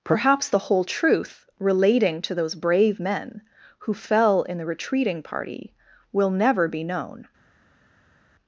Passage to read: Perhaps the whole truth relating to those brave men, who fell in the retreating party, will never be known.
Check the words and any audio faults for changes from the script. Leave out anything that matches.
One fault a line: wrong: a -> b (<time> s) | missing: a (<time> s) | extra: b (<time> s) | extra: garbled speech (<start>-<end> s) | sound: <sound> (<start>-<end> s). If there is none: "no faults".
no faults